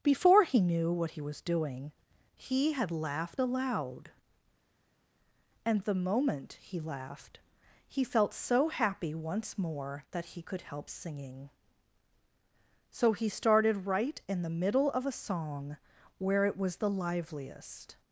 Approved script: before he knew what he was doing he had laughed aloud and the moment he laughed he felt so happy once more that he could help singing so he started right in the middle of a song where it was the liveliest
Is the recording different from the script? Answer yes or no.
no